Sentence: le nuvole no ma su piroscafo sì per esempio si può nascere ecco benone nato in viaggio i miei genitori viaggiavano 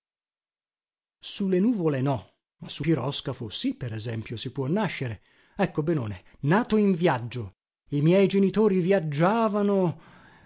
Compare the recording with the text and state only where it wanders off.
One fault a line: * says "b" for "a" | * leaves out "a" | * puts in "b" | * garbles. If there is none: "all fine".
all fine